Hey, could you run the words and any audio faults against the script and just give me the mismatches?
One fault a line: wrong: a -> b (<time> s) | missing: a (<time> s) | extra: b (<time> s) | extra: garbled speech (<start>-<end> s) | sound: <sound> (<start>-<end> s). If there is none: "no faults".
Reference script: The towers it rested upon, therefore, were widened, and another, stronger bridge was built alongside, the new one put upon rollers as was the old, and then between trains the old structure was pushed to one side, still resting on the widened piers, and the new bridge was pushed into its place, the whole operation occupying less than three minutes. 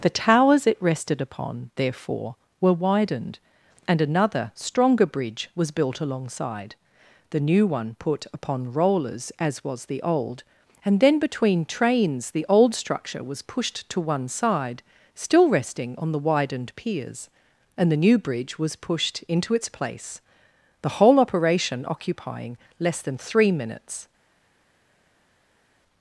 no faults